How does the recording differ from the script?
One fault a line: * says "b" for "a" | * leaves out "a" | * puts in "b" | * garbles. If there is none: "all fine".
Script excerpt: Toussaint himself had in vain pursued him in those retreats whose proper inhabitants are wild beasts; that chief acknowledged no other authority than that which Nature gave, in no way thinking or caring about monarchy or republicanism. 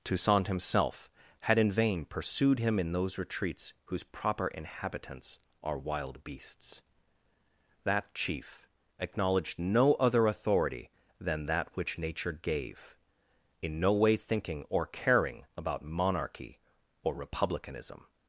all fine